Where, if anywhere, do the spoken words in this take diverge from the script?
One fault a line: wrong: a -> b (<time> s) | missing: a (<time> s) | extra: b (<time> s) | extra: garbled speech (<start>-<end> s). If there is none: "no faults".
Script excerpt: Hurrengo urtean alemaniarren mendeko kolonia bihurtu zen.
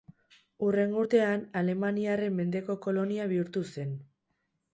no faults